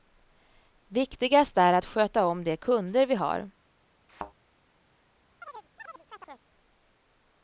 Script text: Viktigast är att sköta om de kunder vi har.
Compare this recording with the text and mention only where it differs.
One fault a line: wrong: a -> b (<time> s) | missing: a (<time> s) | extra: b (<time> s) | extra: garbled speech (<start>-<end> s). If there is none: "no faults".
no faults